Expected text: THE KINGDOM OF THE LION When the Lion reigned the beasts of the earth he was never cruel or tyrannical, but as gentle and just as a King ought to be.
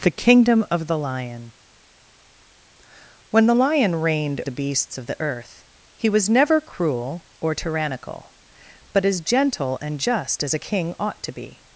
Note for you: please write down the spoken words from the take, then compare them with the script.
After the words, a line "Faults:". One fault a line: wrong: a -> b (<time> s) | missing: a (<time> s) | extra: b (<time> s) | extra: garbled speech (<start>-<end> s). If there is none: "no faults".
THE KINGDOM OF THE LION When the Lion reigned the beasts of the earth he was never cruel or tyrannical, but as gentle and just as a King ought to be.
Faults:
no faults